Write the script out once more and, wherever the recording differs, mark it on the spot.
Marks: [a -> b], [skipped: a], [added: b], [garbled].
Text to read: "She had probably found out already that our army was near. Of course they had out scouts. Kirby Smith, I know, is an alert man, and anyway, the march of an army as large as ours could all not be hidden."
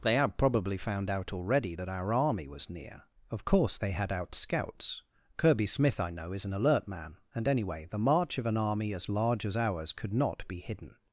["She -> They] had probably found out already that our army was near. Of course they had out scouts. Kirby Smith, I know, is an alert man, and anyway, the march of an army as large as ours could [skipped: all] not be hidden."